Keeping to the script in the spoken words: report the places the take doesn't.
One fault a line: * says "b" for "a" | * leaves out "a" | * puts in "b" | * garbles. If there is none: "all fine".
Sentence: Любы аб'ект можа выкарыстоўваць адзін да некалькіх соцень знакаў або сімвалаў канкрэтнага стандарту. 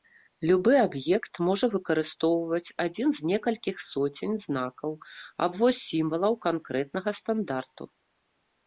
* says "з" for "да"